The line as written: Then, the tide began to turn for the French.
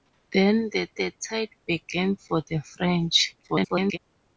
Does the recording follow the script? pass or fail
fail